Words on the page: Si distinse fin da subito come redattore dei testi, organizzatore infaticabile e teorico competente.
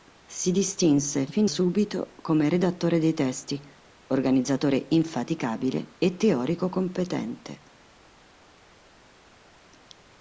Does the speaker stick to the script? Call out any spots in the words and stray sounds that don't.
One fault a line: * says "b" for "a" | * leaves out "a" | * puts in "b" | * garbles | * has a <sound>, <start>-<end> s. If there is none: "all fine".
* leaves out "da"